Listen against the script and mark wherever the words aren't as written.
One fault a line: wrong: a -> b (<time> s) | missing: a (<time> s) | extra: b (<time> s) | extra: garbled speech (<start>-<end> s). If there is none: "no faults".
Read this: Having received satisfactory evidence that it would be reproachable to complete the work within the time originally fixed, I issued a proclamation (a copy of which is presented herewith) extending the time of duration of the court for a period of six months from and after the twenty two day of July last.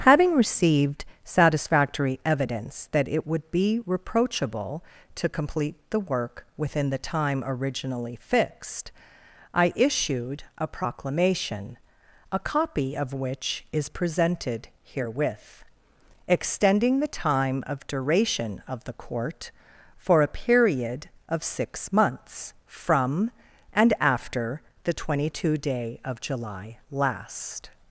no faults